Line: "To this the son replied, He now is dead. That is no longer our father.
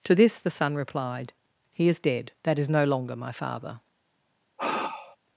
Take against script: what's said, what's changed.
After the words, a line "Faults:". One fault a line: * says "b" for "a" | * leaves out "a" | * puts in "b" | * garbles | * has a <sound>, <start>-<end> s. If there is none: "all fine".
"To this the son replied, He is dead. That is no longer my father.
Faults:
* leaves out "now"
* says "my" for "our"
* has a sigh, 4.6-5.2 s